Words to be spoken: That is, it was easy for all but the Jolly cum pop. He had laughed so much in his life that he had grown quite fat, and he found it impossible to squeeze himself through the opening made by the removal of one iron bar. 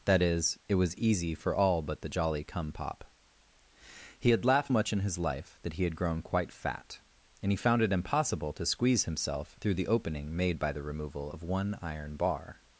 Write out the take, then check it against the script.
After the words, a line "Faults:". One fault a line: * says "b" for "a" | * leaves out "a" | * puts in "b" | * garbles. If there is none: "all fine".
That is, it was easy for all but the Jolly cum pop. He had laughed much in his life that he had grown quite fat, and he found it impossible to squeeze himself through the opening made by the removal of one iron bar.
Faults:
* leaves out "so"